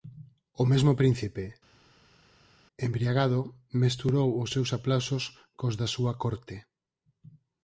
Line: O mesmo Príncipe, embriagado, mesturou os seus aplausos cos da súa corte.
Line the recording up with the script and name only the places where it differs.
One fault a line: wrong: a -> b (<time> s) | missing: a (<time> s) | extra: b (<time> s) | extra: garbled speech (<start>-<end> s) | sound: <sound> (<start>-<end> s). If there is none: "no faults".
no faults